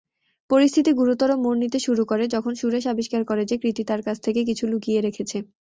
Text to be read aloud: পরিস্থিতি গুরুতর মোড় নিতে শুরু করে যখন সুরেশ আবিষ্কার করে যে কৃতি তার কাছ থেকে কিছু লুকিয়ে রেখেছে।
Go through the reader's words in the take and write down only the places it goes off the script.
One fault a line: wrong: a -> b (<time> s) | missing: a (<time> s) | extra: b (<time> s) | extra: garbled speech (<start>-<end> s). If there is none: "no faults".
no faults